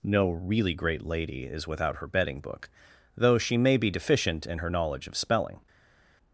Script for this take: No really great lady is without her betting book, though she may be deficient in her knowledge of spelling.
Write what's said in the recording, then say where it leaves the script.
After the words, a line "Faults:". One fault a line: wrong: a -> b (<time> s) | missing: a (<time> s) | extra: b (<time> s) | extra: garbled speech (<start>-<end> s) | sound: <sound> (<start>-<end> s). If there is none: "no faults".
No really great lady is without her betting book, though she may be deficient in her knowledge of spelling.
Faults:
no faults